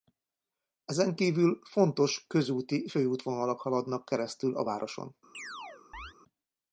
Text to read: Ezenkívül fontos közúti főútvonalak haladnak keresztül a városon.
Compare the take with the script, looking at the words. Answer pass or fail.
pass